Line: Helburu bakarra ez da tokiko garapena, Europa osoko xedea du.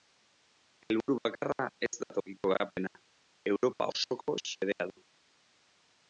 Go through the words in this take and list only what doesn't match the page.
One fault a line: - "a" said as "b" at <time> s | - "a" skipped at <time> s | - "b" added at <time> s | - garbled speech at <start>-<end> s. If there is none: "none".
none